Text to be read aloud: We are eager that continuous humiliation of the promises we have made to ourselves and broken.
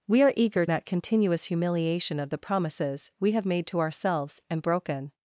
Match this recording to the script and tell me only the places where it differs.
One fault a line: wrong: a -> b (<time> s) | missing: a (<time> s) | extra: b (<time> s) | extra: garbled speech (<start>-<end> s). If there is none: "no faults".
no faults